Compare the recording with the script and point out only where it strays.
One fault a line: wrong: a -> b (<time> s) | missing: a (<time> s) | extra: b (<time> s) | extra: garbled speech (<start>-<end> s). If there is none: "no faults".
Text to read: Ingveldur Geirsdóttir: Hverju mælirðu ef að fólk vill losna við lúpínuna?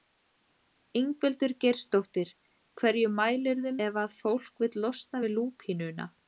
no faults